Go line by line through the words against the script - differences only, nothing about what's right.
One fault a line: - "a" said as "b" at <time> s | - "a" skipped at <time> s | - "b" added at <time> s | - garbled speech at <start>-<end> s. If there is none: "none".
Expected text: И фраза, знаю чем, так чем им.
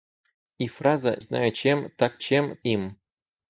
none